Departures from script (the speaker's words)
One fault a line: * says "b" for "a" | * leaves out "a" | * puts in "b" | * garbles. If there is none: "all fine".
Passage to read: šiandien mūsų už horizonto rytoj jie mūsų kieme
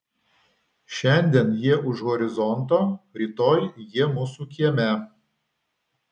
* says "jie" for "mūsų"